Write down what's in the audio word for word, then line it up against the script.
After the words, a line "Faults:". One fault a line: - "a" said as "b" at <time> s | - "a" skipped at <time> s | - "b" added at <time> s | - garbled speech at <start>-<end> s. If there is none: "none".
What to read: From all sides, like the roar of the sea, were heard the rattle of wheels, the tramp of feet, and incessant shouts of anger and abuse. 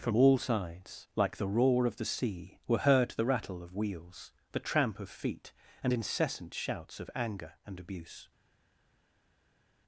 From all sides, like the roar of the sea, were heard the rattle of wheels, the tramp of feet, and incessant shouts of anger and abuse.
Faults:
none